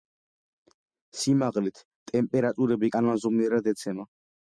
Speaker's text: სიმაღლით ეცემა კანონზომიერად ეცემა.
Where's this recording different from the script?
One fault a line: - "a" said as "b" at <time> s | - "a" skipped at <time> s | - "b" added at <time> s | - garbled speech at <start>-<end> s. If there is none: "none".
- "ეცემა" said as "ტემპერატურები" at 2.1 s